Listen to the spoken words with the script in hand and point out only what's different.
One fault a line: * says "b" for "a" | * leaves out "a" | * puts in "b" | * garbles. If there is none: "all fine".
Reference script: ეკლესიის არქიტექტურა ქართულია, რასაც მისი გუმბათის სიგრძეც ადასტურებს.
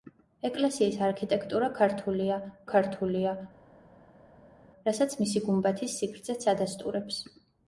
* puts in "ქართულია"